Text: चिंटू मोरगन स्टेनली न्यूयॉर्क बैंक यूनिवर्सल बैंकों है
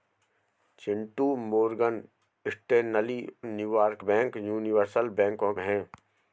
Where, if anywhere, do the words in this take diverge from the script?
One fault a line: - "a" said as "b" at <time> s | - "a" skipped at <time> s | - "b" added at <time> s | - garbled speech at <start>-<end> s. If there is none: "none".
none